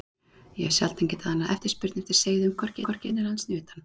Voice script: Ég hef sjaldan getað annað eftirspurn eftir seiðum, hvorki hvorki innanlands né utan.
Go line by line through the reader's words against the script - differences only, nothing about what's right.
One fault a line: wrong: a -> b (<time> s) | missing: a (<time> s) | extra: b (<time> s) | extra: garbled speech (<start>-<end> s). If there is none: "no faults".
no faults